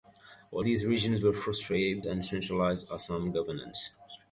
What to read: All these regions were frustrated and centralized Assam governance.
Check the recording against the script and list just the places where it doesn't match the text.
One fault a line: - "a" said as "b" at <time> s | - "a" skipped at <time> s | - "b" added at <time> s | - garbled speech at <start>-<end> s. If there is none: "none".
none